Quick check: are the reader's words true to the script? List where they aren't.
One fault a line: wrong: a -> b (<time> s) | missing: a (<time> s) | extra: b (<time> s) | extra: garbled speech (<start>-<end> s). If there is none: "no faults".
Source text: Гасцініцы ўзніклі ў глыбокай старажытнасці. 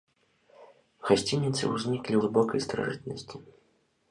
missing: ў (2.1 s)